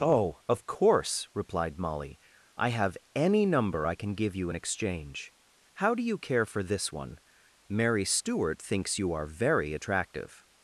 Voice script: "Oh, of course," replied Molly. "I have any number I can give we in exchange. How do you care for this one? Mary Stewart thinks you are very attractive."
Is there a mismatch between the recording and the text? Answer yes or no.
yes